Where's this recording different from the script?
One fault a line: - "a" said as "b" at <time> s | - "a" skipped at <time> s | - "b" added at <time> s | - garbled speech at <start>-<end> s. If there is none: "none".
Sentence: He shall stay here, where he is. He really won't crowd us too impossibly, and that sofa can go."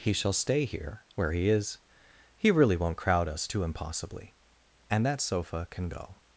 none